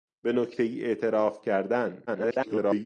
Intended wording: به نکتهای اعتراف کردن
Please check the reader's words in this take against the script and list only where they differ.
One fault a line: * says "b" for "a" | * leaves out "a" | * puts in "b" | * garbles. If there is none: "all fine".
* garbles